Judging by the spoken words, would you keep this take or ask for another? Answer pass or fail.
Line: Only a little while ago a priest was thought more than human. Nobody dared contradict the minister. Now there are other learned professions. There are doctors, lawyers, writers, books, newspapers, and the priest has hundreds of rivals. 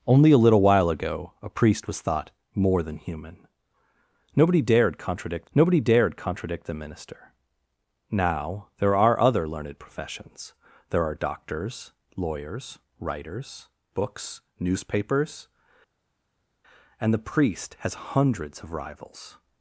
fail